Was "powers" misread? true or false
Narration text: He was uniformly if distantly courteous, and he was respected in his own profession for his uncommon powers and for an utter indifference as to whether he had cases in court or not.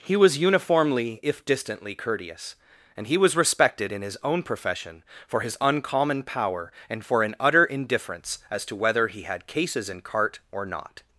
true